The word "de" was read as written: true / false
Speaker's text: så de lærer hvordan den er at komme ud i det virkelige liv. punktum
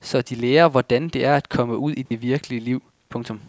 true